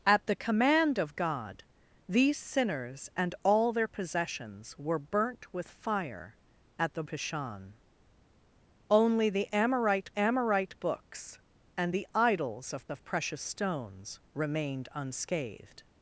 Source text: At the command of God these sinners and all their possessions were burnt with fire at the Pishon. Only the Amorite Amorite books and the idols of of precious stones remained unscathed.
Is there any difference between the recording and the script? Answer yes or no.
no